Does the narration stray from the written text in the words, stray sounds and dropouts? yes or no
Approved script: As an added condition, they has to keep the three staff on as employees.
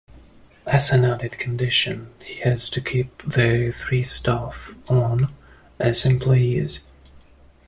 yes